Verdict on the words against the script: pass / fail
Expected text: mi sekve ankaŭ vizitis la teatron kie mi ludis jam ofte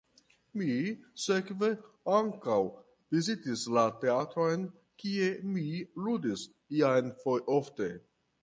pass